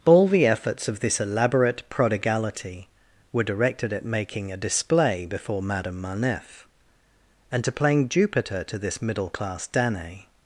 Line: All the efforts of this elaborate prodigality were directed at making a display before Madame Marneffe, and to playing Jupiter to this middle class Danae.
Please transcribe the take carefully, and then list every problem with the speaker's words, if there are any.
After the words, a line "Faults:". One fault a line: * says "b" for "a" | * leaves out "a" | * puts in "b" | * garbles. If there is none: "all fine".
All the efforts of this elaborate prodigality were directed at making a display before Madame Marneffe, and to playing Jupiter to this middle class Danae.
Faults:
all fine